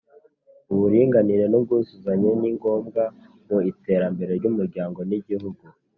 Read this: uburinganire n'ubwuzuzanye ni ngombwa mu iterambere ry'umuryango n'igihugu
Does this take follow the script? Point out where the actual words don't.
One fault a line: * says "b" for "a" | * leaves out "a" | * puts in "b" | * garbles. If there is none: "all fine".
all fine